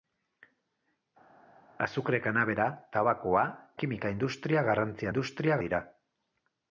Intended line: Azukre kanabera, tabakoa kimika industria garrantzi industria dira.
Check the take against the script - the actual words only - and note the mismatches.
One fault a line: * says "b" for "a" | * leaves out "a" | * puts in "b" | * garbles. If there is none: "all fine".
all fine